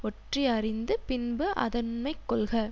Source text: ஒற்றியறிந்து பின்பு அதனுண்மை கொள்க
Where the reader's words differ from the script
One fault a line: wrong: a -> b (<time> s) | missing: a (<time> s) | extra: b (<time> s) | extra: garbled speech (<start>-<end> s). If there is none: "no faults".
no faults